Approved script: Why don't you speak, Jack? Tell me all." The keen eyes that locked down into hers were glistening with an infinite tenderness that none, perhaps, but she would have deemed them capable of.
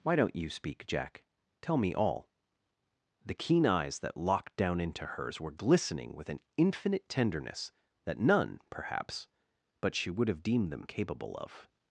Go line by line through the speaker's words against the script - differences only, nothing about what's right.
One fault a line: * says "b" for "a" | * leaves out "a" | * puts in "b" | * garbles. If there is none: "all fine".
all fine